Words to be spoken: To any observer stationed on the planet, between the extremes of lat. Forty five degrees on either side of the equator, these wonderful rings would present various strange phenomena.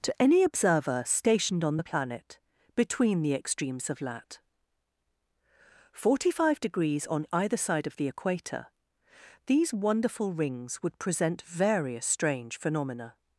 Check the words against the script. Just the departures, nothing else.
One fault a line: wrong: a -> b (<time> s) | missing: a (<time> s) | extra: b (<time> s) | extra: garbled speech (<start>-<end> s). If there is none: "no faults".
no faults